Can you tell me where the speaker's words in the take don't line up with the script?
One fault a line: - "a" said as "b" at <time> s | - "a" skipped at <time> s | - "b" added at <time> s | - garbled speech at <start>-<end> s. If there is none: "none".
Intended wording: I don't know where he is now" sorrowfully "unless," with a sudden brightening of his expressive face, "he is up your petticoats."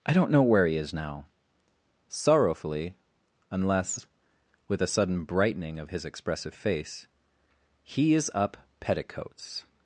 - "your" skipped at 8.6 s